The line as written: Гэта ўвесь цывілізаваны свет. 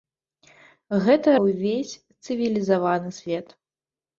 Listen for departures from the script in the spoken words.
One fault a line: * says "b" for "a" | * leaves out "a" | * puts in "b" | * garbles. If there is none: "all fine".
all fine